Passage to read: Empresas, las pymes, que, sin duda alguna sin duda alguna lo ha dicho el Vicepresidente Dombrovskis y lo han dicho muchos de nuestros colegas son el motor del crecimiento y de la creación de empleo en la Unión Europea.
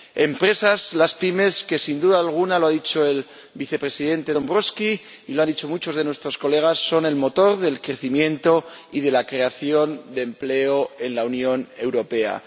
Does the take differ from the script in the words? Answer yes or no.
yes